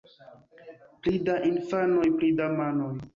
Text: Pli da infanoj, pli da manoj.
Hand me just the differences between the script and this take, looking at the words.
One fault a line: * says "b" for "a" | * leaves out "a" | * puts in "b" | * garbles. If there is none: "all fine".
all fine